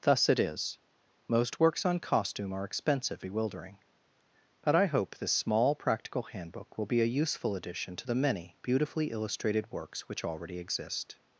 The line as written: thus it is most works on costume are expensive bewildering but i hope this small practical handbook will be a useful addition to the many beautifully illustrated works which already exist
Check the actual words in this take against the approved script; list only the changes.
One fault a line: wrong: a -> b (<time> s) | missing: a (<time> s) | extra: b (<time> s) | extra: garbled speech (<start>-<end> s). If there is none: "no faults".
no faults